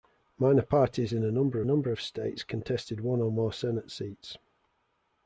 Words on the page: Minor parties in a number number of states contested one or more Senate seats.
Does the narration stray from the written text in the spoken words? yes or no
no